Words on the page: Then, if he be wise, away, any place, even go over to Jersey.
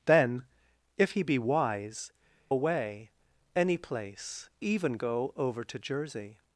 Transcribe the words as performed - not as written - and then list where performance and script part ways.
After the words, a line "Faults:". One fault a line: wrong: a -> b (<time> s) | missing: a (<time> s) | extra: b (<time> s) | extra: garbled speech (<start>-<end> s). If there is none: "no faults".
Then, if he be wise, away, any place, even go over to Jersey.
Faults:
no faults